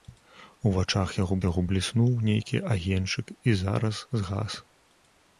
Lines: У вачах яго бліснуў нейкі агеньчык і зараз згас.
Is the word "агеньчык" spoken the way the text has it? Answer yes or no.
yes